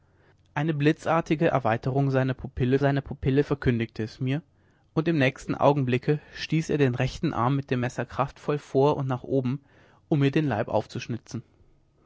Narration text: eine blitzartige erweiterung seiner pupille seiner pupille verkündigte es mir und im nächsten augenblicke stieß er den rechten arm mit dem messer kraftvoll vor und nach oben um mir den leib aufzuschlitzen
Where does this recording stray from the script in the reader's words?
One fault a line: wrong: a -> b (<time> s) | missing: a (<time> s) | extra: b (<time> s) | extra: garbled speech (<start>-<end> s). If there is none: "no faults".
no faults